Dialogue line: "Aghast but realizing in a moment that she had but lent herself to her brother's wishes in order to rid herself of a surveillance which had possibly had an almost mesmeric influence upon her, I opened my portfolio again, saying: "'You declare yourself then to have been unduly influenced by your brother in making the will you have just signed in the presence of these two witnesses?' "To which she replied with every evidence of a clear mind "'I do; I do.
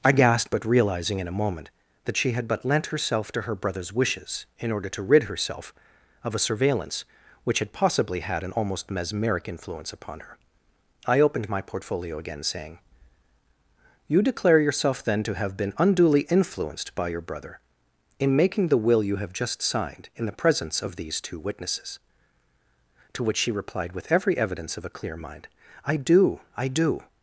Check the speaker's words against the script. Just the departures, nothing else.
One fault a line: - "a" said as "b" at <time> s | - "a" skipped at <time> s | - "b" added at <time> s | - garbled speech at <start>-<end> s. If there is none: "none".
- "Aghast" said as "I gasped" at 0.0 s